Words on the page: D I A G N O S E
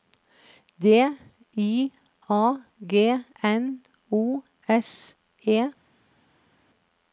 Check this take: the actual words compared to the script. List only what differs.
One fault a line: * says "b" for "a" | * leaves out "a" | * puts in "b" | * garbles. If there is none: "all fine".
all fine